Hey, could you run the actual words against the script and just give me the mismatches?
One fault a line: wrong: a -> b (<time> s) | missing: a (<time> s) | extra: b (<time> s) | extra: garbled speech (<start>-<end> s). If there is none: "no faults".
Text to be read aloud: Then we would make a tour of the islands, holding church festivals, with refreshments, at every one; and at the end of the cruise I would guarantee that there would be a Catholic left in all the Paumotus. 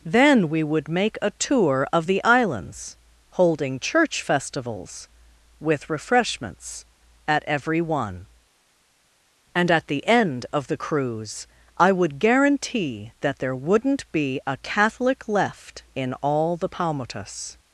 wrong: would -> wouldn't (13.5 s)